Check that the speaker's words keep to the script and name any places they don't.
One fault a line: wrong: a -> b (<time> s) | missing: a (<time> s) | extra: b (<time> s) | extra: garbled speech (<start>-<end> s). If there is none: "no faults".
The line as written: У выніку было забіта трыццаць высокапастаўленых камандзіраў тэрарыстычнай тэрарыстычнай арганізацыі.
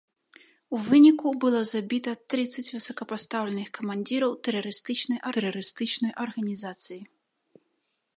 no faults